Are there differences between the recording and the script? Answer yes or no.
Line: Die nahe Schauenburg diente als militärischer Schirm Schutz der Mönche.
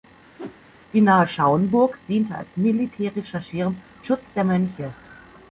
no